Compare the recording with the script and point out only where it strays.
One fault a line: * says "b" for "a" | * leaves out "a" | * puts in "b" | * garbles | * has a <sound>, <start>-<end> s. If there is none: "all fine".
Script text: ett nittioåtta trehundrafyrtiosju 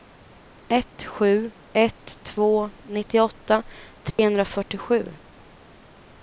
* puts in "sju ett två"
* has a dropout, 4.1-4.2 s